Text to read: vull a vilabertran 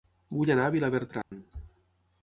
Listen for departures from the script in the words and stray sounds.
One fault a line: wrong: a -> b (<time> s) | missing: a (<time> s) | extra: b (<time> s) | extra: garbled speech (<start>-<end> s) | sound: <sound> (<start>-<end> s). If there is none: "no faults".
extra: anar (0.5 s)
sound: dropout (1.2-1.3 s)